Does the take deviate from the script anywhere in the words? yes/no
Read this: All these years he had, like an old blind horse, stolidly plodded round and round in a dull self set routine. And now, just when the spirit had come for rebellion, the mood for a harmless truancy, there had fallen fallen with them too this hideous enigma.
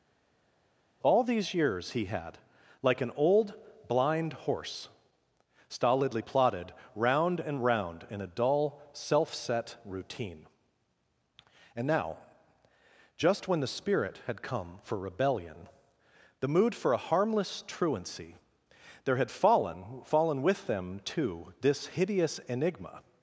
no